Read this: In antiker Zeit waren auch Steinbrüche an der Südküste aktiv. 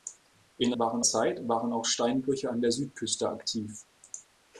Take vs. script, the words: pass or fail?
fail